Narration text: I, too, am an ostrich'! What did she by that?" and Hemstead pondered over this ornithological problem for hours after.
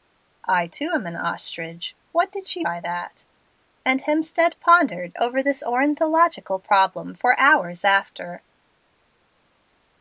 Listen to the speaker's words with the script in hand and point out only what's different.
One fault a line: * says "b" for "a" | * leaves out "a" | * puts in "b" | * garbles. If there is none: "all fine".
all fine